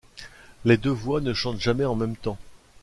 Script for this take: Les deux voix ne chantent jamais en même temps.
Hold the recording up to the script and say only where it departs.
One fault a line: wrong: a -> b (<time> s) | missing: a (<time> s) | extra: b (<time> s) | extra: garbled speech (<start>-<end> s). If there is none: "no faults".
no faults